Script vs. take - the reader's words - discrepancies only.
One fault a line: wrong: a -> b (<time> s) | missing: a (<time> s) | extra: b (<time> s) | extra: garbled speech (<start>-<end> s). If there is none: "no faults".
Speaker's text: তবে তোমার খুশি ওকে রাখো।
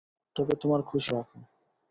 missing: ওকে (1.1 s)